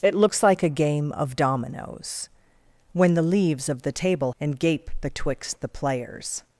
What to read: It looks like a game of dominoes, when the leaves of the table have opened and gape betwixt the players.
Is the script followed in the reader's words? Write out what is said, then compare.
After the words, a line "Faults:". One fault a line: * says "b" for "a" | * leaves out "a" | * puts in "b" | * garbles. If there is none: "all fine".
It looks like a game of dominoes, when the leaves of the table and gape betwixt the players.
Faults:
* leaves out "have opened"